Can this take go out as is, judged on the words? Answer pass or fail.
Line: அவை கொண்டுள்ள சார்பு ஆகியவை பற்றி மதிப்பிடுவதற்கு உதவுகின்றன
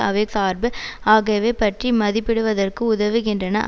fail